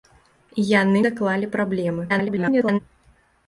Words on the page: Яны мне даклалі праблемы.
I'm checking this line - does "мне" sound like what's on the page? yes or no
no